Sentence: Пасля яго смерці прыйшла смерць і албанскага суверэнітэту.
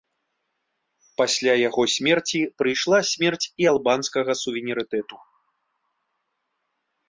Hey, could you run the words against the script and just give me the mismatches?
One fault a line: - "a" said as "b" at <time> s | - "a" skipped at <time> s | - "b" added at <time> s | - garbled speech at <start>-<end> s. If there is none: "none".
none